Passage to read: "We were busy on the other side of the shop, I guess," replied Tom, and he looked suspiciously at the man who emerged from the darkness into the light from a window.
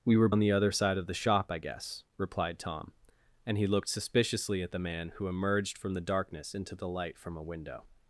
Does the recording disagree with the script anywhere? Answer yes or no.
yes